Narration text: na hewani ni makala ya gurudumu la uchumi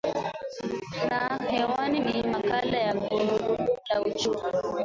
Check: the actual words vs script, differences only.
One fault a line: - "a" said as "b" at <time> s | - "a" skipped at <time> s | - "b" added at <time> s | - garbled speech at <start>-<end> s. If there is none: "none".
none